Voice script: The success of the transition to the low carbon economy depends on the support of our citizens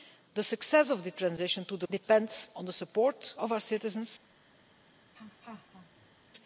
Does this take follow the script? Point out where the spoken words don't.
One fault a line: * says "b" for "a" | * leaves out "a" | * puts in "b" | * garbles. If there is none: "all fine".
* leaves out "low carbon economy"